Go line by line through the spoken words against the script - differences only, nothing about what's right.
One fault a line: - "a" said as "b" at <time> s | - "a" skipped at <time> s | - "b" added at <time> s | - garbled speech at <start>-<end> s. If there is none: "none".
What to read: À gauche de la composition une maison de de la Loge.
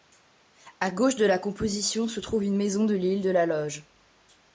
- "se trouve" added at 2.1 s
- "l'île" added at 3.0 s